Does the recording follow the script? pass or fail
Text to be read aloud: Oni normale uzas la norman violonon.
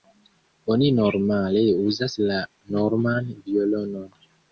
pass